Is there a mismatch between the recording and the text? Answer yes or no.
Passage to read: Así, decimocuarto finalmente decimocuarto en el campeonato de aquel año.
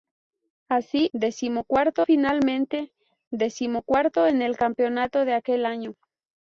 no